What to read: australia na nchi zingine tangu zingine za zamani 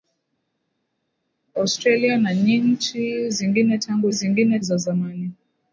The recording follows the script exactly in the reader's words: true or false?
true